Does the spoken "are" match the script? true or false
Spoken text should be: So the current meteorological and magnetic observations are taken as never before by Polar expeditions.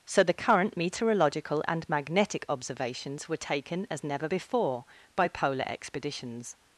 false